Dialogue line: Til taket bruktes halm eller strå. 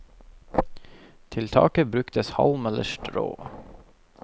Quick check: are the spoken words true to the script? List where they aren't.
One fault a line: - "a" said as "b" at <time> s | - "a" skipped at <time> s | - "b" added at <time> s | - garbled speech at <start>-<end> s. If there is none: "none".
none